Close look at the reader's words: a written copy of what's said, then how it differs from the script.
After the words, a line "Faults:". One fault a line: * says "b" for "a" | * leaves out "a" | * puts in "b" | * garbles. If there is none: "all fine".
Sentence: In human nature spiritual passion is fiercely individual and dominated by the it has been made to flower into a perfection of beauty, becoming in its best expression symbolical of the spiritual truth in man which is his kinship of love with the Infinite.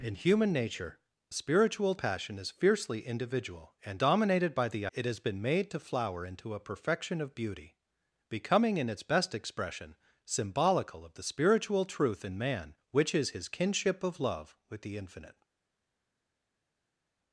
In human nature spiritual passion is fiercely individual and dominated by the it has been made to flower into a perfection of beauty, becoming in its best expression symbolical of the spiritual truth in man which is his kinship of love with the Infinite.
Faults:
all fine